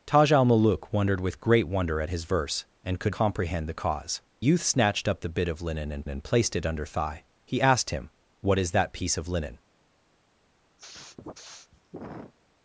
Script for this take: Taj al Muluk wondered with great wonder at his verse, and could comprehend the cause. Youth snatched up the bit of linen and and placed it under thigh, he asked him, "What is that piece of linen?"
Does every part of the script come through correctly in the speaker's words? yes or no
yes